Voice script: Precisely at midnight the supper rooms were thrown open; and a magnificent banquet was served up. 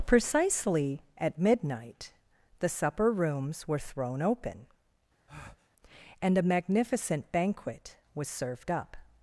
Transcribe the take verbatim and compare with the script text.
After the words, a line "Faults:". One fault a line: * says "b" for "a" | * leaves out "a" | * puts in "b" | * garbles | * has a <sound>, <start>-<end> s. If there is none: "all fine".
Precisely at midnight the supper rooms were thrown open; and a magnificent banquet was served up.
Faults:
* has a breath, 5.3-5.7 s